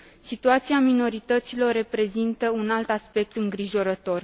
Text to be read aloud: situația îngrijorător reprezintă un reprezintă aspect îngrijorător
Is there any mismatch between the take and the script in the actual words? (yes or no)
yes